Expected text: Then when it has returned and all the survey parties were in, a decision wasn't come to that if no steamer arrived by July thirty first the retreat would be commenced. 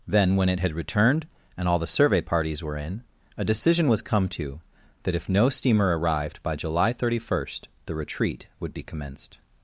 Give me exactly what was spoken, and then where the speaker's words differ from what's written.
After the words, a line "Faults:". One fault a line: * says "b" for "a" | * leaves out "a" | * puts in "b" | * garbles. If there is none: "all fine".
Then when it had returned and all the survey parties were in, a decision was come to that if no steamer arrived by July thirty first the retreat would be commenced.
Faults:
* says "had" for "has"
* says "was" for "wasn't"